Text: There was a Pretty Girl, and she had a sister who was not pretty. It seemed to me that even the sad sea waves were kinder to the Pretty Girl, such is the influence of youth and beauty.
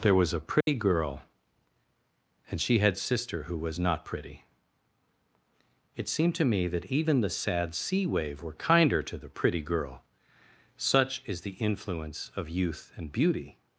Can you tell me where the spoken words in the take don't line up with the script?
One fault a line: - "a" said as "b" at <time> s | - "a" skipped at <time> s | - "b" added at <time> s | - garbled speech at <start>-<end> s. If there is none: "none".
- "a" skipped at 3.0 s
- "waves" said as "wave" at 8.1 s